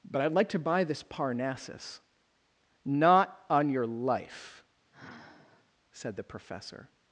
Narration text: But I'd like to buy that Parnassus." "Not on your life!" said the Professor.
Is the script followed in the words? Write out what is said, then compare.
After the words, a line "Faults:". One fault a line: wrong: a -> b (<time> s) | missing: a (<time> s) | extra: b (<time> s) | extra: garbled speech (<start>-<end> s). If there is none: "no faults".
But I'd like to buy this Parnassus." "Not on your life!" said the Professor.
Faults:
wrong: that -> this (0.8 s)